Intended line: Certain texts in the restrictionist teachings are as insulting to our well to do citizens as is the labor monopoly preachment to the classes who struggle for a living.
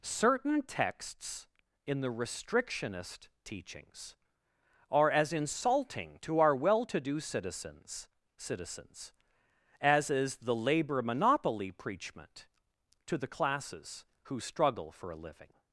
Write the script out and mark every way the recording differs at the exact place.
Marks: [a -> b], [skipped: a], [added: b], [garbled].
Certain texts in the restrictionist teachings are as insulting to our well to do citizens [added: citizens] as is the labor monopoly preachment to the classes who struggle for a living.